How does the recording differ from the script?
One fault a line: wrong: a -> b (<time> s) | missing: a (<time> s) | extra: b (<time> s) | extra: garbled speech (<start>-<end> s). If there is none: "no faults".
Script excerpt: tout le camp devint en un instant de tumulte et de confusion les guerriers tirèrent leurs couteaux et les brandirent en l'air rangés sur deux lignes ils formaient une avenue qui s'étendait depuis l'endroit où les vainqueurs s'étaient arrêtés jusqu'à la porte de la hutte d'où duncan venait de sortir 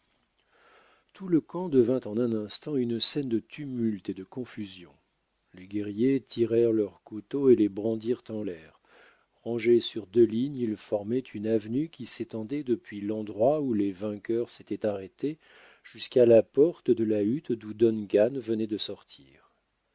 extra: une scène (2.8 s)